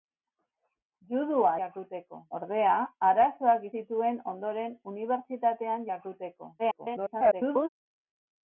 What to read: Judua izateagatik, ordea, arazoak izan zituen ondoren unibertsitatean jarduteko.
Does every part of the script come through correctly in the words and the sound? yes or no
no